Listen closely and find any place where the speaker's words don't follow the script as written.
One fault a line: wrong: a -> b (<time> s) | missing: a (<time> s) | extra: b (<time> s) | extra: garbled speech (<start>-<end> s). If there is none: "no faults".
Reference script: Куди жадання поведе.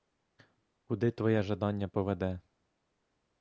extra: твоє (1.1 s)